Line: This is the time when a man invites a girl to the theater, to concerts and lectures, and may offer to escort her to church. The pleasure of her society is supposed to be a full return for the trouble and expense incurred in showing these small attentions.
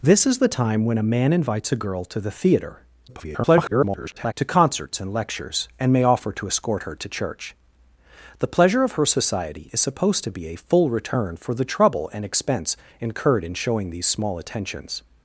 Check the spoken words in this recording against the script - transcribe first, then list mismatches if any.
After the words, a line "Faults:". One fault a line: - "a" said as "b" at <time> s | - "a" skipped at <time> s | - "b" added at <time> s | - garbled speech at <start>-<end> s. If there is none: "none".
This is the time when a man invites a girl to the theater, [garbled] to concerts and lectures, and may offer to escort her to church. The pleasure of her society is supposed to be a full return for the trouble and expense incurred in showing these small attentions.
Faults:
- garbled speech at 3.1-4.3 s